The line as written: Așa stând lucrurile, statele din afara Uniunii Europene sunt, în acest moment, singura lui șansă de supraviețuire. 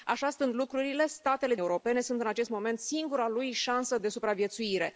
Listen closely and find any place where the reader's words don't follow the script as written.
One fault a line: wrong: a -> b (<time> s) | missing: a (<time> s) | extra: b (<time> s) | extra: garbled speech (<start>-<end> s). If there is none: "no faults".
missing: din afara Uniunii (1.6 s)